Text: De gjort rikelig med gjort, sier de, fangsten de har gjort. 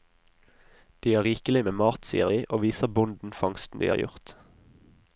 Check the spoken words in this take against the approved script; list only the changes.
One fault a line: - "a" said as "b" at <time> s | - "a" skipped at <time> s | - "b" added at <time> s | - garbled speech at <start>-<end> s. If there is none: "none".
- "gjort" said as "har" at 1.1 s
- "gjort" said as "mat" at 1.8 s
- "og viser bonden" added at 2.5 s